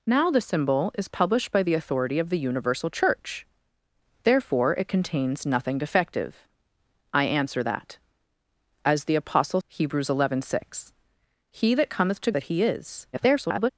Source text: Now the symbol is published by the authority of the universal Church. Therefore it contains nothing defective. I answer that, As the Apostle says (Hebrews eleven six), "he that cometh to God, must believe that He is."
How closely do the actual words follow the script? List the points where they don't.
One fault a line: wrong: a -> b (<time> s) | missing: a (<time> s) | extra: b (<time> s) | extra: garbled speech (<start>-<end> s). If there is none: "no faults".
missing: says (9.6 s)
missing: God must believe (12.3 s)
extra: garbled speech (13.1-13.7 s)